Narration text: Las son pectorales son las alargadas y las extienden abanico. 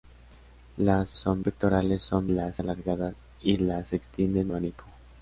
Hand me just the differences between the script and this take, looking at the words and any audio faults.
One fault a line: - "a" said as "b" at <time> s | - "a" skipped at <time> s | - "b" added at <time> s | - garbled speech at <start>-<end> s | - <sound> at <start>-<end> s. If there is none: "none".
none